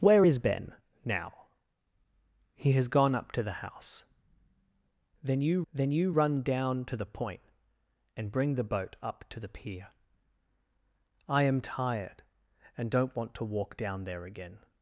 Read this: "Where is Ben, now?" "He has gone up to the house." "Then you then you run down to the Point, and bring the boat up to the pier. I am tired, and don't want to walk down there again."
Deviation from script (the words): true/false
false